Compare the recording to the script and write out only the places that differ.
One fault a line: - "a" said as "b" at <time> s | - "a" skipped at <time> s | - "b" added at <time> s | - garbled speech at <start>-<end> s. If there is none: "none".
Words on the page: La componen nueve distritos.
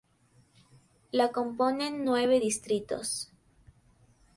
none